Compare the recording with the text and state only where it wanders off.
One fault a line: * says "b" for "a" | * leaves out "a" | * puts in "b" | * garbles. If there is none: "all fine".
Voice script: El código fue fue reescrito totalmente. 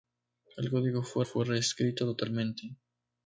all fine